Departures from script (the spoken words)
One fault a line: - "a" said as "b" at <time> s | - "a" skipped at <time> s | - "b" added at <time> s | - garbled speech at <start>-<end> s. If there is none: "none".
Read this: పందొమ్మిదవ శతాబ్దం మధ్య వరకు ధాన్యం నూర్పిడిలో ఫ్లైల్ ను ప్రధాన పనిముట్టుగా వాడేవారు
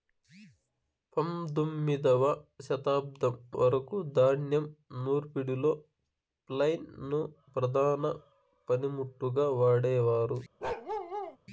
- "మధ్య" skipped at 3.3 s